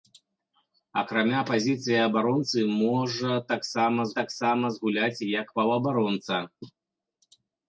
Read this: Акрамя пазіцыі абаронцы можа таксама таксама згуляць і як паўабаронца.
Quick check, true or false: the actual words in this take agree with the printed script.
true